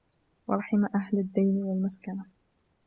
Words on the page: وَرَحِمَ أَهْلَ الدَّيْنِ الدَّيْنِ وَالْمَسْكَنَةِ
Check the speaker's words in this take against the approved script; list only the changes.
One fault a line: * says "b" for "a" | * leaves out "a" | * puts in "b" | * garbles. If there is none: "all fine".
* leaves out "الدَّيْنِ"